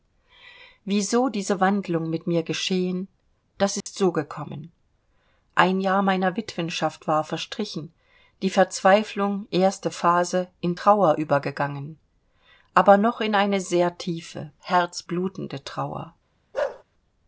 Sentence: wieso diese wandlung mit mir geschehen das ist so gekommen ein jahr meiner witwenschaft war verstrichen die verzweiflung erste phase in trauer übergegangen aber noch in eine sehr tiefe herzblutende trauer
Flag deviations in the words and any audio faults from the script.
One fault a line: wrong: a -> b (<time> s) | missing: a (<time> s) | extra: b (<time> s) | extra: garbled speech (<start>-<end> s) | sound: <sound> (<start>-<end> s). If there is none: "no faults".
sound: dropout (3.8-3.9 s)
sound: bark (16.5-16.8 s)